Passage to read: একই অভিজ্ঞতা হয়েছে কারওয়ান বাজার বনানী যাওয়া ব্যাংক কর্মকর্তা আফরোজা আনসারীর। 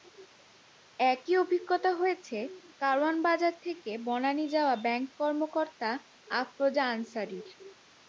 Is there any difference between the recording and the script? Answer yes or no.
yes